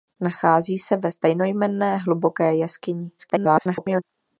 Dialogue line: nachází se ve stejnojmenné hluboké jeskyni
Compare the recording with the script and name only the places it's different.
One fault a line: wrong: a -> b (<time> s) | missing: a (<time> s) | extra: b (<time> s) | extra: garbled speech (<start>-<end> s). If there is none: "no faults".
extra: garbled speech (3.2-4.0 s)